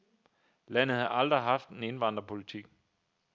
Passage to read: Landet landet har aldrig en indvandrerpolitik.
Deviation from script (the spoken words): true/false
true